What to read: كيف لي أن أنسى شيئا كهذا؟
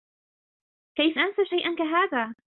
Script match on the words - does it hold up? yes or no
no